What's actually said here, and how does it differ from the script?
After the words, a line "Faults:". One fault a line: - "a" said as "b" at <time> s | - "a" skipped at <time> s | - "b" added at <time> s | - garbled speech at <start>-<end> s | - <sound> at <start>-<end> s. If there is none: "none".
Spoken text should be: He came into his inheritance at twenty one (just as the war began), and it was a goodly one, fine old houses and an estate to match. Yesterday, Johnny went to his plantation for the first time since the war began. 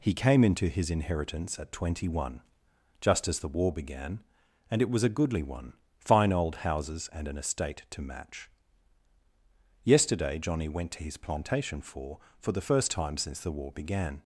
He came into his inheritance at twenty one (just as the war began), and it was a goodly one, fine old houses and an estate to match. Yesterday, Johnny went to his plantation for for the first time since the war began.
Faults:
- "for" added at 12.4 s